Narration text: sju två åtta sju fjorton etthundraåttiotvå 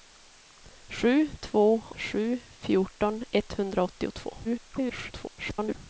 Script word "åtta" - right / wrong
wrong